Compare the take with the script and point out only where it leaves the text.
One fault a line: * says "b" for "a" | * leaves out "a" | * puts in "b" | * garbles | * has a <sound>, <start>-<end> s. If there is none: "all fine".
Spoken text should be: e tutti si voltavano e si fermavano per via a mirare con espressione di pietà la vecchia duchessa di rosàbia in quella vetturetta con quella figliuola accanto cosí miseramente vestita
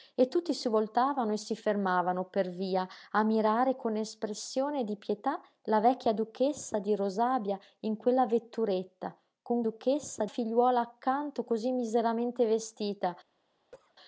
* says "duchessa" for "quella"
* has a cough, 13.7-13.9 s